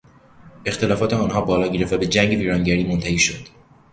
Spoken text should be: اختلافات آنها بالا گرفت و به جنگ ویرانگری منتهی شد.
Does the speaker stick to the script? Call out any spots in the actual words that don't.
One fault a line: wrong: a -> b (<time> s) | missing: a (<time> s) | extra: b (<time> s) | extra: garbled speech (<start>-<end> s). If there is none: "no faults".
no faults